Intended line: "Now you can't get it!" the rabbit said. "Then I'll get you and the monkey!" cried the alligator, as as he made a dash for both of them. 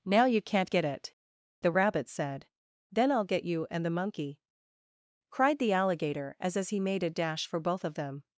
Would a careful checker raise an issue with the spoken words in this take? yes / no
no